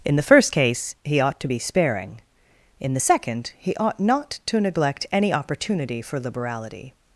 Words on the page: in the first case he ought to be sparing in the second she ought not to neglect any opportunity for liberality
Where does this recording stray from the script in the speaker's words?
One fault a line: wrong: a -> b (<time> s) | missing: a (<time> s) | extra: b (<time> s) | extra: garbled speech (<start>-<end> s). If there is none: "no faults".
wrong: she -> he (3.6 s)